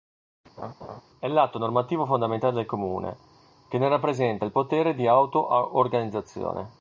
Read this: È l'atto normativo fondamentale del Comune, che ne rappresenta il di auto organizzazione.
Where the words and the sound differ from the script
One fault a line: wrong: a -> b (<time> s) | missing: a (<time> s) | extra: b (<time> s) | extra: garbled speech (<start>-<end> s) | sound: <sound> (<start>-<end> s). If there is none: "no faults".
sound: laugh (0.6-1.0 s)
extra: potere (4.5 s)